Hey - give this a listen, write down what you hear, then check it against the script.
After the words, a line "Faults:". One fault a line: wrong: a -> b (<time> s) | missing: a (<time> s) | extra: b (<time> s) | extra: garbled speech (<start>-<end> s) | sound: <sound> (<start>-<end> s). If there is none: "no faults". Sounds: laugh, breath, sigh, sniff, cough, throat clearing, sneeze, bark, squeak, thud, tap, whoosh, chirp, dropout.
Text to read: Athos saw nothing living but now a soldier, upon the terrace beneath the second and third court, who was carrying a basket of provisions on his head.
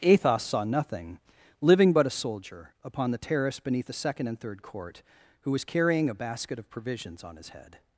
Athos saw nothing living but a soldier, upon the terrace beneath the second and third court, who was carrying a basket of provisions on his head.
Faults:
missing: now (2.1 s)